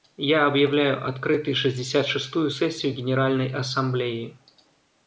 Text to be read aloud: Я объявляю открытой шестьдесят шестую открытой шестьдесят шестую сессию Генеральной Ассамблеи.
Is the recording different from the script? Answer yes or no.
yes